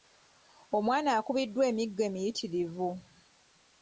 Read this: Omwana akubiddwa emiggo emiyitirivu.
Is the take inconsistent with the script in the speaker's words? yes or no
no